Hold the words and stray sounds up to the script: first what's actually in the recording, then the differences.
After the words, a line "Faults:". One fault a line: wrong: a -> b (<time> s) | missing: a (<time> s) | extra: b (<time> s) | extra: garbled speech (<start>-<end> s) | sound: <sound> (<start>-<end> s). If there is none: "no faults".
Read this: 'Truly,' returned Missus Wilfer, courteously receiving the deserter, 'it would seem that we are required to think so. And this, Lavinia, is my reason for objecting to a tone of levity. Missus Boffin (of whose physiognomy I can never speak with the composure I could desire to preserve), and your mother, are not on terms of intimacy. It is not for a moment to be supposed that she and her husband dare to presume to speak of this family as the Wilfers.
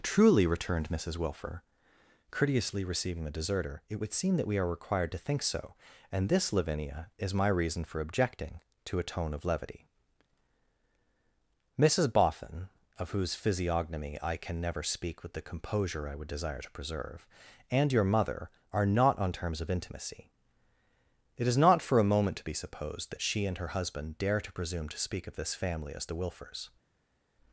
'Truly,' returned Missus Wilfer, courteously receiving the deserter, 'it would seem that we are required to think so. And this, Lavinia, is my reason for objecting to a tone of levity. Missus Boffin (of whose physiognomy I can never speak with the composure I would desire to preserve), and your mother, are not on terms of intimacy. It is not for a moment to be supposed that she and her husband dare to presume to speak of this family as the Wilfers.
Faults:
wrong: could -> would (16.2 s)